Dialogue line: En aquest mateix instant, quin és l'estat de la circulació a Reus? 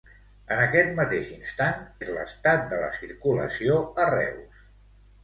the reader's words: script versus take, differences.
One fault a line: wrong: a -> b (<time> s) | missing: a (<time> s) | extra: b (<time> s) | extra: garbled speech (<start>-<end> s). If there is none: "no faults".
missing: quin (1.8 s)